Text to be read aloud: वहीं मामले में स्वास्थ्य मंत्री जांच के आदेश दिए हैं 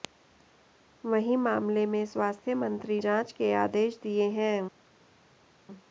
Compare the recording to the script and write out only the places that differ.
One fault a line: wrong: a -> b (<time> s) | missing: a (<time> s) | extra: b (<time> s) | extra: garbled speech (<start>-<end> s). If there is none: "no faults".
no faults